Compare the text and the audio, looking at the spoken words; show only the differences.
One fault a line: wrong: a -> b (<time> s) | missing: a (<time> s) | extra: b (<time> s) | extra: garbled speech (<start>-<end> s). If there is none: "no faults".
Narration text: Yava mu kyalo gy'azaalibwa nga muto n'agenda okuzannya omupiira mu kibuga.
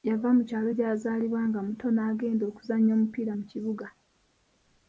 no faults